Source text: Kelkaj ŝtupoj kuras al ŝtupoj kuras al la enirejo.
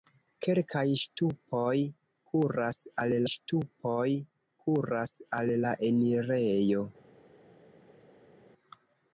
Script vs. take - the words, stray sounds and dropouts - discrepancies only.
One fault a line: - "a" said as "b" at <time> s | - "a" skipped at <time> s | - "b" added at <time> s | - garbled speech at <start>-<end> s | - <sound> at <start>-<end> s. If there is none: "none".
none